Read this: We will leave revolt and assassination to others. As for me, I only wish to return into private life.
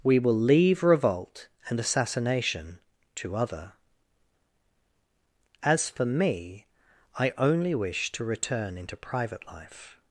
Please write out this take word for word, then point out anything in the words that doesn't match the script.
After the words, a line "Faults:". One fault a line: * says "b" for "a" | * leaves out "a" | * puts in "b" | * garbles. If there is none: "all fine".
We will leave revolt and assassination to other. As for me, I only wish to return into private life.
Faults:
* says "other" for "others"